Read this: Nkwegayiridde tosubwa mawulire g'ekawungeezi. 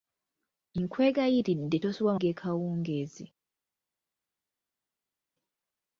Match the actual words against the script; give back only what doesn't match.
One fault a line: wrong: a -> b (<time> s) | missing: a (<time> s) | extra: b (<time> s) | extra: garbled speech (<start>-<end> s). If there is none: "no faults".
missing: mawulire (2.1 s)